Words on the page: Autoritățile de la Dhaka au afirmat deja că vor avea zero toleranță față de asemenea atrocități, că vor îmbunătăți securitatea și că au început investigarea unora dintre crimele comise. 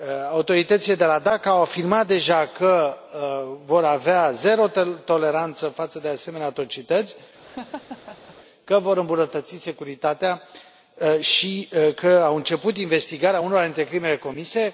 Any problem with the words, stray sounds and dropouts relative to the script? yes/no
yes